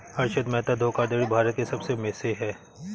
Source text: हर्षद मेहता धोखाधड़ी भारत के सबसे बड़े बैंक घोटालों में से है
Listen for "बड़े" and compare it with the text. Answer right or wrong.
wrong